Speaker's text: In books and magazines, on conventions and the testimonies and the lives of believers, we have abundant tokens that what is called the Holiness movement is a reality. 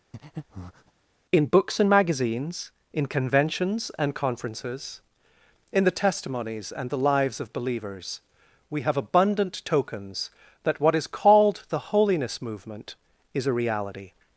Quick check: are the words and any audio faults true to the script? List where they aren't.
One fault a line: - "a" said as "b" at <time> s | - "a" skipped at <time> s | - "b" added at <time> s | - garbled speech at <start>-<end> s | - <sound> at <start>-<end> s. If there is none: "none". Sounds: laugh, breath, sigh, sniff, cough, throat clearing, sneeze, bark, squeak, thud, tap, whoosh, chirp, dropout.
- breath at 0.1-0.9 s
- "on" said as "in" at 2.9 s
- "conferences in" added at 4.1 s